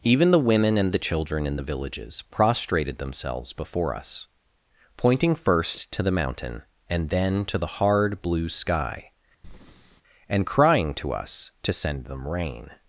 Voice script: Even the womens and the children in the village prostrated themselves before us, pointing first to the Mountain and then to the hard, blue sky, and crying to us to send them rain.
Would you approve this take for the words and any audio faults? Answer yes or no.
no